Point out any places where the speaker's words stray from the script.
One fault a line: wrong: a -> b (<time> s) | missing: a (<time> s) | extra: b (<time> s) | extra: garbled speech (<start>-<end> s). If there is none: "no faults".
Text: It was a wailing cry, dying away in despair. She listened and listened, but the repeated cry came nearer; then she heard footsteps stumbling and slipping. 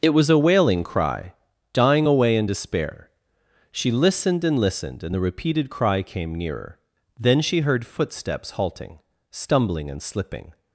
wrong: but -> and (5.0 s)
extra: halting (8.5 s)